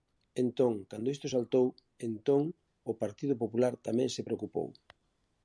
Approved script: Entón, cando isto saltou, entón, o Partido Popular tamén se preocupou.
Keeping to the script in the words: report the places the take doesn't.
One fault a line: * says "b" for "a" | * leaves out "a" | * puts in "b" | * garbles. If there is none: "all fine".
all fine